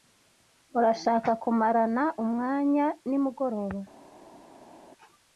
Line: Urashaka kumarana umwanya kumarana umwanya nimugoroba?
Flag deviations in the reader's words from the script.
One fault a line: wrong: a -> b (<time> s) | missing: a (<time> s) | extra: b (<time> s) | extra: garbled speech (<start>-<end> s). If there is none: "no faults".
missing: kumarana umwanya (2.9 s)